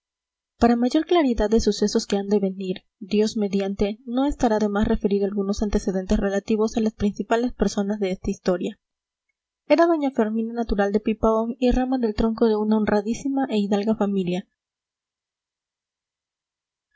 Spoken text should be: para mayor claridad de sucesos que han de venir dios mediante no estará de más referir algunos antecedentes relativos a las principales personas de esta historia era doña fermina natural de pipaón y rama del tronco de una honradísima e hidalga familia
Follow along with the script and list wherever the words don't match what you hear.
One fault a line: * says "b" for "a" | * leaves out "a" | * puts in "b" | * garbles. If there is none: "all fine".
all fine